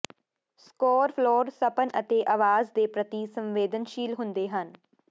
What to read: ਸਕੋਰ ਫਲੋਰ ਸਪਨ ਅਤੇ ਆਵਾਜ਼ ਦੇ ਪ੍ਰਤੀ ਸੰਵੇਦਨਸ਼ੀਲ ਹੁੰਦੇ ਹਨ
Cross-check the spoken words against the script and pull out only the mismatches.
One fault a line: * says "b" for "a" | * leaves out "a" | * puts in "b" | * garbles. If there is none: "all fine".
all fine